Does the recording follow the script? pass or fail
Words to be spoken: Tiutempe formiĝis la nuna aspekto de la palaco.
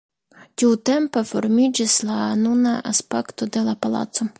pass